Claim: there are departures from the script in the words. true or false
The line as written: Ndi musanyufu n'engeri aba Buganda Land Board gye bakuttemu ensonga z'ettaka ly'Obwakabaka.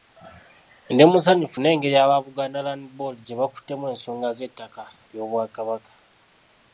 false